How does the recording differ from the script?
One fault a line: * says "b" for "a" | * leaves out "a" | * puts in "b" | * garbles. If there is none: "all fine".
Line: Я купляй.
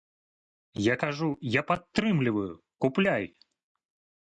* puts in "кажу я падтрымліваю"